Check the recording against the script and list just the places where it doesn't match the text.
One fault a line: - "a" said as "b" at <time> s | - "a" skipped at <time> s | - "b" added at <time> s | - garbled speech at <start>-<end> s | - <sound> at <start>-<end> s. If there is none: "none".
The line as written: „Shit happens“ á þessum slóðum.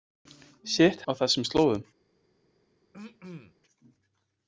- "happens" skipped at 1.0 s
- throat clearing at 2.9-3.5 s